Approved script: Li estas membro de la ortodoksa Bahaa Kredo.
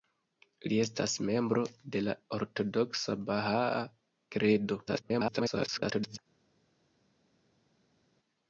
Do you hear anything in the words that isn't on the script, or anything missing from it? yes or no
yes